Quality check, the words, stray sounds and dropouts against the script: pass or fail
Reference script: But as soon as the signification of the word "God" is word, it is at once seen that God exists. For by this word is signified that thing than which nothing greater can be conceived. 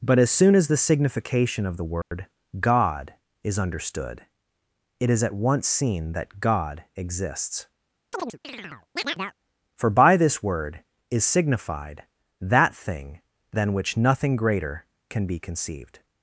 fail